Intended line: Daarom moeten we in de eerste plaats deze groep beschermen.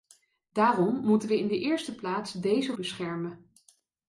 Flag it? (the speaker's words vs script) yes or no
yes